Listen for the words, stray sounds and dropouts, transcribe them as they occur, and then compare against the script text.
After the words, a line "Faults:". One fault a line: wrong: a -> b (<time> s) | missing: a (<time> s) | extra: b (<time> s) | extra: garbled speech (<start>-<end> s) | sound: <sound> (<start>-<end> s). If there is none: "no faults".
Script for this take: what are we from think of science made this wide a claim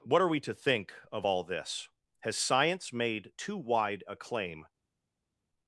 what are we to think of all this has science made too wide a claim
Faults:
wrong: from -> to (0.4 s)
extra: all this has (1.3 s)
wrong: this -> too (3.4 s)